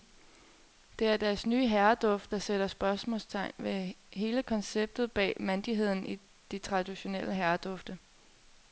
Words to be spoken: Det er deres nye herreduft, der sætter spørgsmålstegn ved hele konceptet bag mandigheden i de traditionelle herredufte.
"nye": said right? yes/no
yes